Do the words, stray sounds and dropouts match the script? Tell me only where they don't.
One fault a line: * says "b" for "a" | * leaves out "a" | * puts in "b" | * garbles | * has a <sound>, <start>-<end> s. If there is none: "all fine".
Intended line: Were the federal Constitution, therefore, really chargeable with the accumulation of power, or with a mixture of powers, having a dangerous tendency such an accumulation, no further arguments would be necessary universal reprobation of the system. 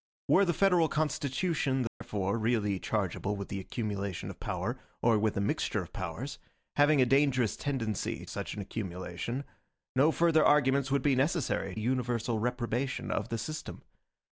* has a dropout, 1.9-2.0 s